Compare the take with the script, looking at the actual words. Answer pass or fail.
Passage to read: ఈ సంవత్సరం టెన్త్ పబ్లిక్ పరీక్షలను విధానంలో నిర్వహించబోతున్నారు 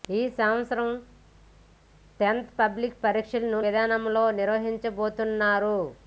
pass